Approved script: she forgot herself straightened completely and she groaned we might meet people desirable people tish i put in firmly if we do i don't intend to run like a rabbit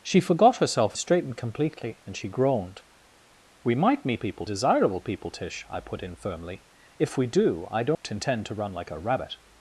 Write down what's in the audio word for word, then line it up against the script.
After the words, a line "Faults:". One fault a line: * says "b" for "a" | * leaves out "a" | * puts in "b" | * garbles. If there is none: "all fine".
she forgot herself straightened completely and she groaned we might meet people desirable people tish i put in firmly if we do i don't intend to run like a rabbit
Faults:
all fine